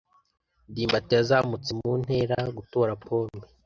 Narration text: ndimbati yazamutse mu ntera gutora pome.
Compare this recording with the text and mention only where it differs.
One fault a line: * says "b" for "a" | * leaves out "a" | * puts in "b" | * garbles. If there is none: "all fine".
all fine